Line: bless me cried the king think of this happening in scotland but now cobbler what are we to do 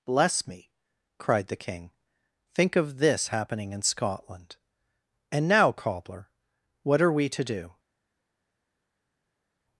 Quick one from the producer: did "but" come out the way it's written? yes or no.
no